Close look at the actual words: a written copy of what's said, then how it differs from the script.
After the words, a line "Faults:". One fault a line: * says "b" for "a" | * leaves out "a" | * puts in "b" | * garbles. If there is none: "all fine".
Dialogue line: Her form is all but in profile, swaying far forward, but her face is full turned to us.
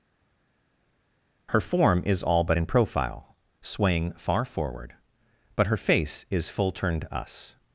Her form is all but in profile, swaying far forward, but her face is full turned us.
Faults:
* leaves out "to"